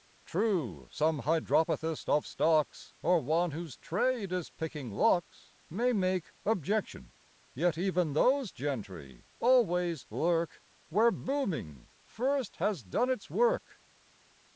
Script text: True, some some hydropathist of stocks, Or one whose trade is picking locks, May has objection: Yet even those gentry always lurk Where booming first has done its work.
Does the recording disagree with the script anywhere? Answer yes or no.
yes